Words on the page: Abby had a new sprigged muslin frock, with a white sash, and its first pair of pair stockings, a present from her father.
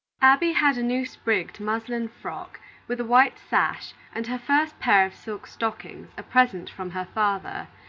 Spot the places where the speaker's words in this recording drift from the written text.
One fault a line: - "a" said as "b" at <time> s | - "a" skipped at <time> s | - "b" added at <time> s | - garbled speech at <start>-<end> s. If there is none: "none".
- "its" said as "her" at 4.3 s
- "pair" said as "silk" at 5.1 s